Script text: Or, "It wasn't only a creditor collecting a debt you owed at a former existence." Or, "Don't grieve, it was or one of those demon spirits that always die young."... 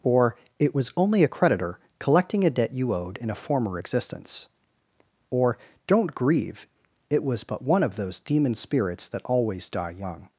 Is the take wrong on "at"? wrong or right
wrong